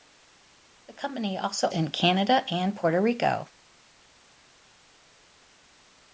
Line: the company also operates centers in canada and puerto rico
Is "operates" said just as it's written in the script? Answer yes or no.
no